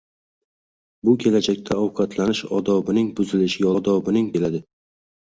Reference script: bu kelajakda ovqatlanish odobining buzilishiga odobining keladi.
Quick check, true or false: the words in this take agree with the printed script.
true